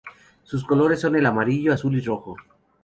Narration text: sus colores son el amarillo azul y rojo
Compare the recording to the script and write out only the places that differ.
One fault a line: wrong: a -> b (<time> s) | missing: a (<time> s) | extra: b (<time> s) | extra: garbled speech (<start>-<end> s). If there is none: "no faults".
no faults